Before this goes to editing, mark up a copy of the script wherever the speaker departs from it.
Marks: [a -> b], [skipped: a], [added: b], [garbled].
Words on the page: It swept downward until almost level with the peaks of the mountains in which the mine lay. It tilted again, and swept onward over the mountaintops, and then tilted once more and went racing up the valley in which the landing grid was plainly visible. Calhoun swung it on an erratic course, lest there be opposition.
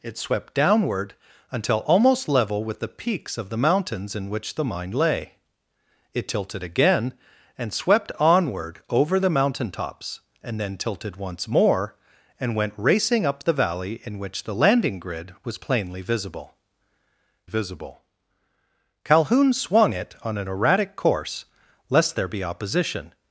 It swept downward until almost level with the peaks of the mountains in which the mine lay. It tilted again, and swept onward over the mountaintops, and then tilted once more and went racing up the valley in which the landing grid was plainly visible. [added: visible] Calhoun swung it on an erratic course, lest there be opposition.